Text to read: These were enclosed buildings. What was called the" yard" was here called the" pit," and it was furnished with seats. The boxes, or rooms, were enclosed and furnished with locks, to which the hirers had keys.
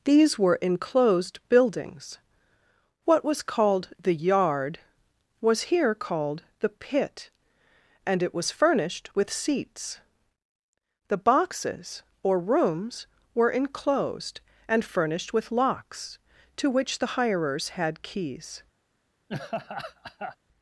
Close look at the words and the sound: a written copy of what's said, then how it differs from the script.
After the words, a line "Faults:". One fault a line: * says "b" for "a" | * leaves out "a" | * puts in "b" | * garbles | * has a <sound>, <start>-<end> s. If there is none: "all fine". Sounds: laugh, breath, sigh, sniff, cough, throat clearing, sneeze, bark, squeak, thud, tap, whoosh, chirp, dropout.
These were enclosed buildings. What was called the" yard" was here called the" pit," and it was furnished with seats. The boxes, or rooms, were enclosed and furnished with locks, to which the hirers had keys.
Faults:
* has a laugh, 19.3-20.4 s